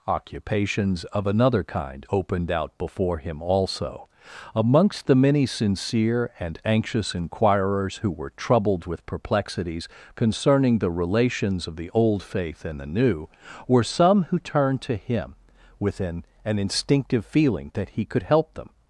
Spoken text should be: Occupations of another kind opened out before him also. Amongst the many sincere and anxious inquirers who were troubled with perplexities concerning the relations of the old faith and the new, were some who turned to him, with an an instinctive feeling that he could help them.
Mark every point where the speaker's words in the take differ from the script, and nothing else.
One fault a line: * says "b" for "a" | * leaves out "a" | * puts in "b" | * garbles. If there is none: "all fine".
all fine